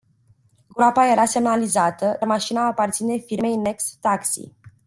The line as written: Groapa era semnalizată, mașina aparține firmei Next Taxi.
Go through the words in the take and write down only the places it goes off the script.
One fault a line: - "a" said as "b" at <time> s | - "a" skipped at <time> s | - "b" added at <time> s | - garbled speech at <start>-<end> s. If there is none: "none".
none